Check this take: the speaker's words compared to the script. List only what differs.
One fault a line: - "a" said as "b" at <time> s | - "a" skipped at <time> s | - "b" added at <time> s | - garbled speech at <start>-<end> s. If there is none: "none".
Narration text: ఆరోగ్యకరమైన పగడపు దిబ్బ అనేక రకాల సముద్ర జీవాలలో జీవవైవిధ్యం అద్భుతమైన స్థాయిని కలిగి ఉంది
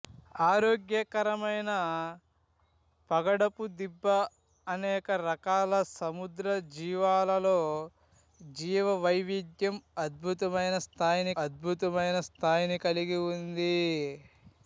- "అద్భుతమైన స్థాయిని" added at 11.4 s